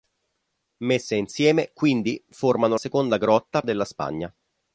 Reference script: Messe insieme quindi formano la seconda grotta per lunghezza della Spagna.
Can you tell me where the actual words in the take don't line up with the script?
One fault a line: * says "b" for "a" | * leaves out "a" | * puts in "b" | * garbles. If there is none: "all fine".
* leaves out "la"
* leaves out "per lunghezza"